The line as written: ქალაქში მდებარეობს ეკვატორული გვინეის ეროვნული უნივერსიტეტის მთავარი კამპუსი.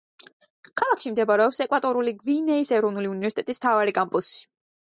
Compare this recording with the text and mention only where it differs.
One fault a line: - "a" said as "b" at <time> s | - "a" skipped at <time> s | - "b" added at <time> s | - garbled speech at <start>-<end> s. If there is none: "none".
none